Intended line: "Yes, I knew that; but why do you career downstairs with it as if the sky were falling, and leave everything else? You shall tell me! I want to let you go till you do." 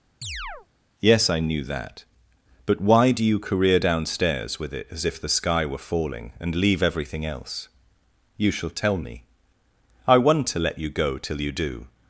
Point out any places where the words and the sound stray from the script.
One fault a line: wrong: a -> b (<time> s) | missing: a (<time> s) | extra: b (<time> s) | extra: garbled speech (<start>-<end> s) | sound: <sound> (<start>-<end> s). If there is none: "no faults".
sound: chirp (0.2-0.7 s)